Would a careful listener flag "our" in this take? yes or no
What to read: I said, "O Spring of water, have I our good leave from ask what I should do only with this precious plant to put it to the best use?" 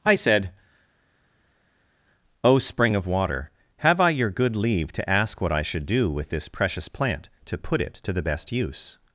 yes